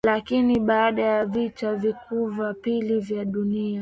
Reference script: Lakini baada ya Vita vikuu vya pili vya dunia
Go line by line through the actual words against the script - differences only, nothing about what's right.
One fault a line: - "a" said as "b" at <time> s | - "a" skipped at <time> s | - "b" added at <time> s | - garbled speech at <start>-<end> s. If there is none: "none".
none